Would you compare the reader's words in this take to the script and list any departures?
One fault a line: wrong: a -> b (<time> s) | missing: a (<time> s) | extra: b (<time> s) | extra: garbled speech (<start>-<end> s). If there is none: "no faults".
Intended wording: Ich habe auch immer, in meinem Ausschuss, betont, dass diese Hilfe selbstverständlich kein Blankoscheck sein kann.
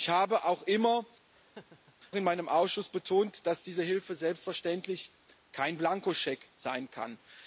no faults